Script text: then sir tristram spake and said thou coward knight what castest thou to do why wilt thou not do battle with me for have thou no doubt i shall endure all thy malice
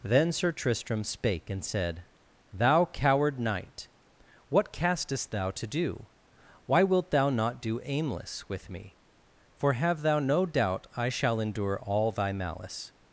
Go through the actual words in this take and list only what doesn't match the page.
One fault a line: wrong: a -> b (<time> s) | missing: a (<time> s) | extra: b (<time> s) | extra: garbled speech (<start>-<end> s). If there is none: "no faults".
wrong: battle -> aimless (7.8 s)